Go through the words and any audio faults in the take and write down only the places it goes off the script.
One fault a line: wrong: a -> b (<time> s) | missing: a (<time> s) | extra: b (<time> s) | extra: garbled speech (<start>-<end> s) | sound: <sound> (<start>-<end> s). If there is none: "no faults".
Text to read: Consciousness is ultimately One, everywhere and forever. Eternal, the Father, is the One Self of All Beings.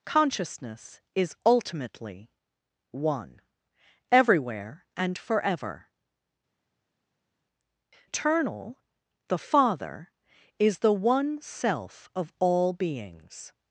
no faults